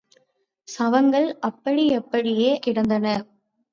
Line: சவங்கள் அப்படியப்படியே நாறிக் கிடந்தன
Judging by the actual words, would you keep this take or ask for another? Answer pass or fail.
fail